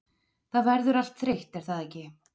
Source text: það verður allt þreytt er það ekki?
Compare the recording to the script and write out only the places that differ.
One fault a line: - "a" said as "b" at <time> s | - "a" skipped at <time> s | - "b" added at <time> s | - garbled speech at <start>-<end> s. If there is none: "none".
none